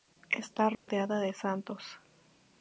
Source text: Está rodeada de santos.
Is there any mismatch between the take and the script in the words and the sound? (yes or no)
yes